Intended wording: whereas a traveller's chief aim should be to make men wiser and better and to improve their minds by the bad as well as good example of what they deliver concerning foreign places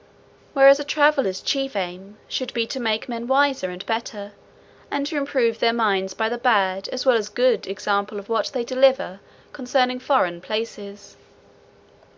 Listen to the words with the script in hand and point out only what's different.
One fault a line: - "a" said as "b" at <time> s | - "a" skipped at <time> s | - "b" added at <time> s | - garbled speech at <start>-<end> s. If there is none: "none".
none